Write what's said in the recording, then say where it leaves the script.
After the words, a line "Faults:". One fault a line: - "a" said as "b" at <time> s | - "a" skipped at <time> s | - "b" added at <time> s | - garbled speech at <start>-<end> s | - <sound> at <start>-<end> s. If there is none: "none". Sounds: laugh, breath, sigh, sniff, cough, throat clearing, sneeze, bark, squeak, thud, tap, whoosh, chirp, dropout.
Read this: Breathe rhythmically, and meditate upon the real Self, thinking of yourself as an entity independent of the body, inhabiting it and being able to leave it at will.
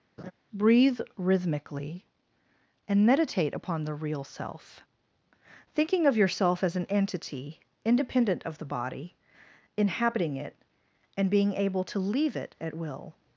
Breathe rhythmically, and meditate upon the real Self, thinking of yourself as an entity independent of the body, inhabiting it and being able to leave it at will.
Faults:
- laugh at 0.2-0.3 s